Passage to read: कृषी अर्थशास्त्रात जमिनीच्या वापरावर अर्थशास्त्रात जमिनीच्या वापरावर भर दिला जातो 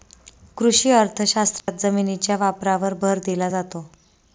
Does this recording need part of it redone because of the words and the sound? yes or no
yes